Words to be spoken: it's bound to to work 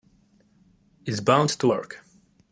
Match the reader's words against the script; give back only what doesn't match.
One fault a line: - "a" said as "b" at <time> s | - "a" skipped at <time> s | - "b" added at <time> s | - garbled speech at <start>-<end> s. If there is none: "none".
- "to" skipped at 1.7 s